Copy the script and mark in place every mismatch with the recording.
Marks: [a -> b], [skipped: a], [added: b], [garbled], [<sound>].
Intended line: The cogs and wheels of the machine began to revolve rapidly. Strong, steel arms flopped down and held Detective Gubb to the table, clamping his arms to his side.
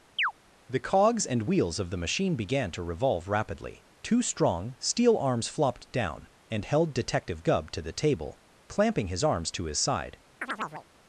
[chirp] The cogs and wheels of the machine began to revolve rapidly. [added: Two] Strong, steel arms flopped down and held Detective Gubb to the table, clamping his arms to his side. [chirp]